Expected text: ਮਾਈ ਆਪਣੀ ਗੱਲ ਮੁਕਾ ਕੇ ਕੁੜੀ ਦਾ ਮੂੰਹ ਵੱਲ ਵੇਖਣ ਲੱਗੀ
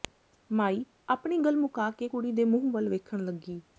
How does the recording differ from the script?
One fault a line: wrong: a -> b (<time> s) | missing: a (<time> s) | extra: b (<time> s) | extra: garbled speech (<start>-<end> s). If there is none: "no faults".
wrong: ਦਾ -> ਦੇ (2.3 s)